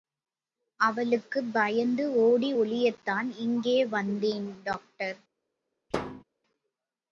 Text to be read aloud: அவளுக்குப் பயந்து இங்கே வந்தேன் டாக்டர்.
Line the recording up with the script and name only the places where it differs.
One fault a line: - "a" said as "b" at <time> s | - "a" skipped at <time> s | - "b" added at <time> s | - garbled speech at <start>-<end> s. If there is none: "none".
- "ஓடி ஒளியத்தான்" added at 2.2 s